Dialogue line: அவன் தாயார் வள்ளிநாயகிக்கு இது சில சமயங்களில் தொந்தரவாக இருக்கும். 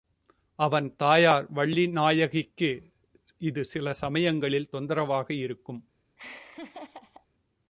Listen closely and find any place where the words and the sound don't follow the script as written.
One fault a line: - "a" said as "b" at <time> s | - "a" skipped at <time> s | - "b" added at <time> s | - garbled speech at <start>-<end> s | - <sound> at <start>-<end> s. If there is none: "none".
- laugh at 6.2-7.3 s